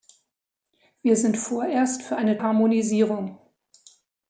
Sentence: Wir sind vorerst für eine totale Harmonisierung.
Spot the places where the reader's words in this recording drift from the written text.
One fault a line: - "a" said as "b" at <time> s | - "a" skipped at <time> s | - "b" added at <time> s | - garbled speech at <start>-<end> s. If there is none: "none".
- "totale" skipped at 2.4 s